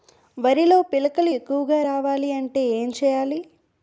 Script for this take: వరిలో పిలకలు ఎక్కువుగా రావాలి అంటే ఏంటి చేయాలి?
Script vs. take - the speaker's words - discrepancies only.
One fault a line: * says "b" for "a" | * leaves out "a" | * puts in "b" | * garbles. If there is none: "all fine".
all fine